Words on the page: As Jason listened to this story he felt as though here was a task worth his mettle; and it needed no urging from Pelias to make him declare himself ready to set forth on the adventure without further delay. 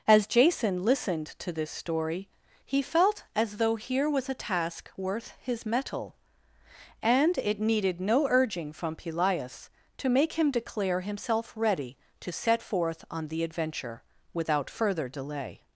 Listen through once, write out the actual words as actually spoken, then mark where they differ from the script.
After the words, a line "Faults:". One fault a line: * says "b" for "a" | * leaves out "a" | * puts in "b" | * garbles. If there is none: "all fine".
As Jason listened to this story he felt as though here was a task worth his mettle; and it needed no urging from Pelias to make him declare himself ready to set forth on the adventure without further delay.
Faults:
all fine